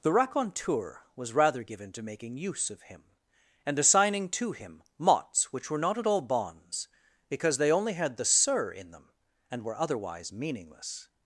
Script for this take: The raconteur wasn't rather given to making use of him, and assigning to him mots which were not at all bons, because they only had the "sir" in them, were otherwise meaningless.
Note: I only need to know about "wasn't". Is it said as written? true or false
false